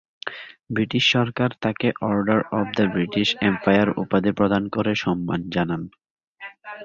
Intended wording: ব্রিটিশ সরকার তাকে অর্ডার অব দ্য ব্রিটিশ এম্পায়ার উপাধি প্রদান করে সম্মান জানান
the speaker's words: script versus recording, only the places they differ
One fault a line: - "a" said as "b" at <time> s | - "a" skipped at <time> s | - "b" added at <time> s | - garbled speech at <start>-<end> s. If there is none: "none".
none